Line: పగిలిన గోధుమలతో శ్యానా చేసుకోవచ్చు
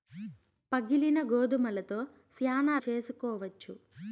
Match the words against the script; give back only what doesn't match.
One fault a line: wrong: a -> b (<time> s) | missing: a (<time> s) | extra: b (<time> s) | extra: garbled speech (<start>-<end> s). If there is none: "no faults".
no faults